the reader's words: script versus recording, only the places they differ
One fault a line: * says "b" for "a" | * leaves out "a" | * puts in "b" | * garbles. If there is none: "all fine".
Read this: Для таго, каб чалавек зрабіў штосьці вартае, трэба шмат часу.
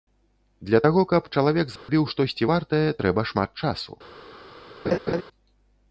all fine